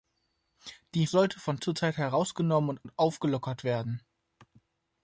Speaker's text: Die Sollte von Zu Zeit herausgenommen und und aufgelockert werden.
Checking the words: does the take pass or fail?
pass